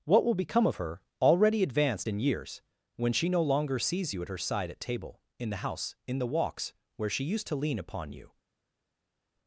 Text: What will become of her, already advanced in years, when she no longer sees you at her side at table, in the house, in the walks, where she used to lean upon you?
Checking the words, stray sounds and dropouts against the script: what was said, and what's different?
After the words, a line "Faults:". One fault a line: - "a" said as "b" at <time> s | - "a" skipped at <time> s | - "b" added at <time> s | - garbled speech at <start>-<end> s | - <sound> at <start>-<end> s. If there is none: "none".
What will become of her, already advanced in years, when she no longer sees you at her side at table, in the house, in the walks, where she used to lean upon you?
Faults:
none